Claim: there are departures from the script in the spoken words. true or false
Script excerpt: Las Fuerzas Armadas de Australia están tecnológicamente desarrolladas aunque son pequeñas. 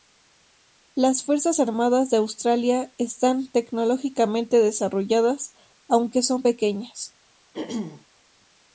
false